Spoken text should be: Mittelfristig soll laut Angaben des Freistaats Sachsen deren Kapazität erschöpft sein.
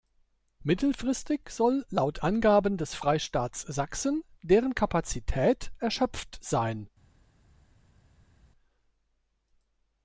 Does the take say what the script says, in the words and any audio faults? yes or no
yes